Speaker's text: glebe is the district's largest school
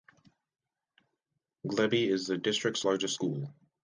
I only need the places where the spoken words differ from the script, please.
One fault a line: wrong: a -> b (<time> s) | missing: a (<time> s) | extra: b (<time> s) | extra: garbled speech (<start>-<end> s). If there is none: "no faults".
no faults